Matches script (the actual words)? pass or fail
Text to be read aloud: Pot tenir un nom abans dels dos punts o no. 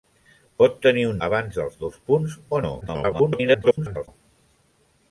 fail